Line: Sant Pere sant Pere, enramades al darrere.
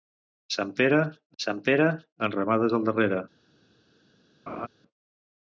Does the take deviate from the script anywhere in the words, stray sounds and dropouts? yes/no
yes